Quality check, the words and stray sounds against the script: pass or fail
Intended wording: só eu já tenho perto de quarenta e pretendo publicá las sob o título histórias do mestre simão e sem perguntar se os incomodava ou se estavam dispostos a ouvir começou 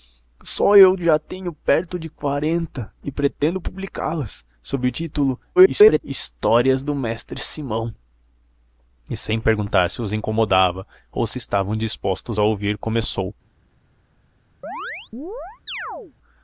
fail